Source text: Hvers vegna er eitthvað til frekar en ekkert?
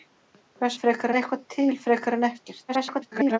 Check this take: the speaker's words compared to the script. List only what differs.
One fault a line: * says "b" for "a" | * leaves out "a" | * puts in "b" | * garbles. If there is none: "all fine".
* says "frekar" for "vegna"
* garbles